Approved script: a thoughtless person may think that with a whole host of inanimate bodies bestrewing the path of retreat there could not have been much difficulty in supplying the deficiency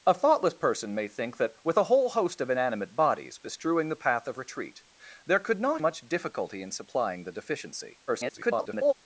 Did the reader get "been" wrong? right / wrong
wrong